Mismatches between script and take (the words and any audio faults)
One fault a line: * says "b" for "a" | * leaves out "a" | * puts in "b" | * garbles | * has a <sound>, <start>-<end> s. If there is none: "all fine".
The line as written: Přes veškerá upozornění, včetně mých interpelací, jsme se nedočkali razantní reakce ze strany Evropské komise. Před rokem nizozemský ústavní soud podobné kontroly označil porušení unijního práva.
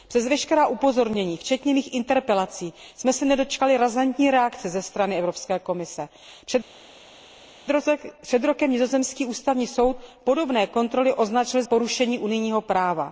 all fine